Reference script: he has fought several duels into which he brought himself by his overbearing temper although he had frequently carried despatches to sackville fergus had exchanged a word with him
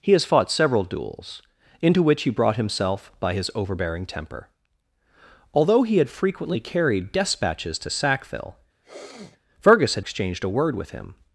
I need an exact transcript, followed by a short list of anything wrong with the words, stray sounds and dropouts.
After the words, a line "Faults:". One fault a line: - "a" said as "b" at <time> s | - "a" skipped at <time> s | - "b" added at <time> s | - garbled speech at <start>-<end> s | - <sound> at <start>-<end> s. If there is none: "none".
he has fought several duels into which he brought himself by his overbearing temper although he had frequently carried despatches to sackville fergus had exchanged a word with him
Faults:
- sneeze at 8.8-9.4 s